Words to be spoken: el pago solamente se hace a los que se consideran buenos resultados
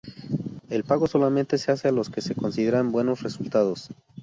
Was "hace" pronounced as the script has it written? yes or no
yes